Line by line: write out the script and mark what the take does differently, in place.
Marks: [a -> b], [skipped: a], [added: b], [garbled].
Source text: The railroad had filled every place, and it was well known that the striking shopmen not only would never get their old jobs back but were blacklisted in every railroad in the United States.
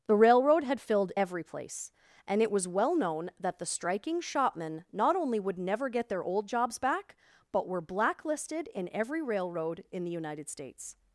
The railroad had filled every place, and it was well known that the striking shopmen not only would never get their old jobs back but were blacklisted in every railroad in the United States.